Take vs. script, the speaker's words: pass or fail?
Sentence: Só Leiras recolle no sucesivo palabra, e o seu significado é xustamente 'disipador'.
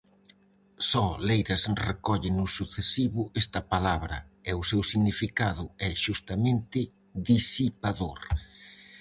fail